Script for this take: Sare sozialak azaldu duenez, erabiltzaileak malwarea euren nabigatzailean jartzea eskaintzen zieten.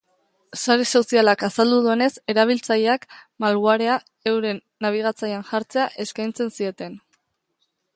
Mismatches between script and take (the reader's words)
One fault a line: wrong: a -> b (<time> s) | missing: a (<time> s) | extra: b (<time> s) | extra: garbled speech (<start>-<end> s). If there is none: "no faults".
no faults